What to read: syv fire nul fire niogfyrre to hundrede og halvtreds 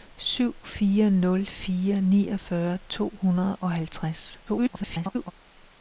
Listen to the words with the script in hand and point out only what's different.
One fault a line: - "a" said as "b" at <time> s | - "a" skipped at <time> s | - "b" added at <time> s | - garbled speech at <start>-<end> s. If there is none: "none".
- garbled speech at 4.5-5.3 s